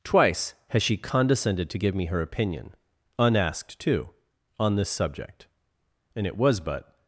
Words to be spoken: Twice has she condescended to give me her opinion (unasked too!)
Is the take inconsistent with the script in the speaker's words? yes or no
yes